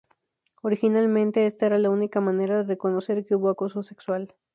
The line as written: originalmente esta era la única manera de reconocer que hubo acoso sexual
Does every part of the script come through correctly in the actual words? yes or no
yes